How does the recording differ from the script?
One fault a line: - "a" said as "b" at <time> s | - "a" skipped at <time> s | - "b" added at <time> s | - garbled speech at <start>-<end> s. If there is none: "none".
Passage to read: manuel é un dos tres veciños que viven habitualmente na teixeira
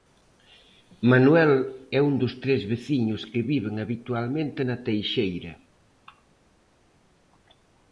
none